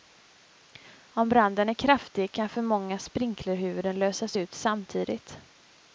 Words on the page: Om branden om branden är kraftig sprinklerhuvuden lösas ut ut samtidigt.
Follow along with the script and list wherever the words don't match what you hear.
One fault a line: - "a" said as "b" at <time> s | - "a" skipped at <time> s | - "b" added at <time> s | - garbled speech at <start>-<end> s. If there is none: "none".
- "om branden är kraftig" said as "är kraftig kan för många" at 1.7 s
- "ut" skipped at 4.5 s